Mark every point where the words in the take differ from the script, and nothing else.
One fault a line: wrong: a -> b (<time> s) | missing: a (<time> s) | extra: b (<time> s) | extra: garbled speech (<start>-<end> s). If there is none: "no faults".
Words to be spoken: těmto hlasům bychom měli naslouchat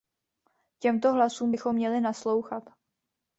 no faults